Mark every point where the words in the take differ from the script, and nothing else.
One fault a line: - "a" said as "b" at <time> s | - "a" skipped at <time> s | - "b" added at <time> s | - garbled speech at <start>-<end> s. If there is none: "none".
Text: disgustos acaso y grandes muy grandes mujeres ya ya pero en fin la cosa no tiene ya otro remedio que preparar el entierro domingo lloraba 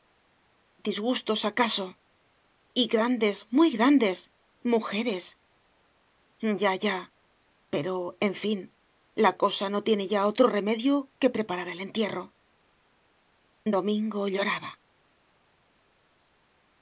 none